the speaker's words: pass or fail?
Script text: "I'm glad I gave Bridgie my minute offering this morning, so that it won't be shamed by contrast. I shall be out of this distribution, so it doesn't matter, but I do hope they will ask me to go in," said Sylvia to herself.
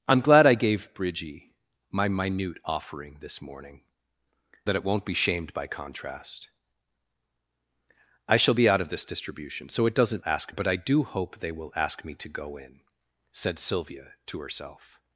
fail